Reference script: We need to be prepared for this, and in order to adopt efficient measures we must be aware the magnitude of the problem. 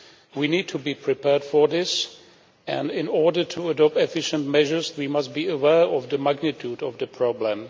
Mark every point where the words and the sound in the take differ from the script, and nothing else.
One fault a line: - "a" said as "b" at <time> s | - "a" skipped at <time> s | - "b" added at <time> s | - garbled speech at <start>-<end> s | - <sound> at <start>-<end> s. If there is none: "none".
- "of" added at 5.8 s